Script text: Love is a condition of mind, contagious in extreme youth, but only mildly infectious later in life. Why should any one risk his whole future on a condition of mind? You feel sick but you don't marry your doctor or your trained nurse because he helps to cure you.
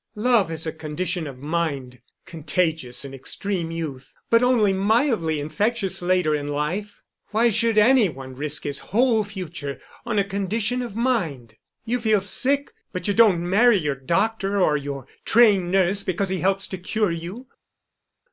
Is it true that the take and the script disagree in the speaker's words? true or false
false